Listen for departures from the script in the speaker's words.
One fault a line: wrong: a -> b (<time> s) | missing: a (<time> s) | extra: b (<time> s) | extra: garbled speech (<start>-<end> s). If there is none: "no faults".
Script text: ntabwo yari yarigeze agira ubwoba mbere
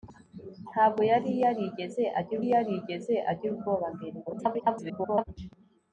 extra: yarigeze agira (2.5 s)
extra: garbled speech (4.3-5.2 s)